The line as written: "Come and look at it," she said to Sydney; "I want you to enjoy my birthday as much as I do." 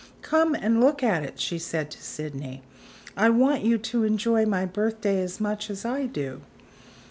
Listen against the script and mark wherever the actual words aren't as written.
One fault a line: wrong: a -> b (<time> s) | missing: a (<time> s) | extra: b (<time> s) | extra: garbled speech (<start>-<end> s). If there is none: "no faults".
no faults